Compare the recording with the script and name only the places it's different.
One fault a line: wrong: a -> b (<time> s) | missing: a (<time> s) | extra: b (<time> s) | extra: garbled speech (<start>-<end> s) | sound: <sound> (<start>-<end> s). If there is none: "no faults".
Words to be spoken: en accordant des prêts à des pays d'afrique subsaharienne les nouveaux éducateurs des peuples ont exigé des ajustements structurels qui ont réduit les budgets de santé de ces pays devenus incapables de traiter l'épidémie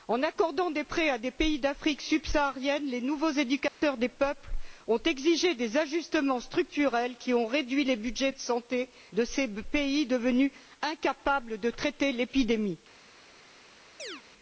sound: dropout (3.7-3.8 s)
sound: chirp (14.0-14.2 s)